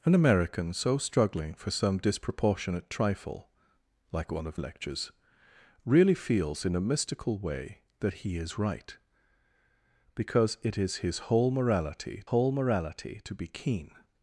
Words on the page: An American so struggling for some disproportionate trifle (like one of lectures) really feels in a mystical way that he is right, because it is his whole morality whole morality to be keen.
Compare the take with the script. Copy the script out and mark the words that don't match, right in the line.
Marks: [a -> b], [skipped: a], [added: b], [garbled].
An American so struggling for some disproportionate trifle (like one of lectures) really feels in a mystical way that he is right, because it is his whole morality whole morality to be keen.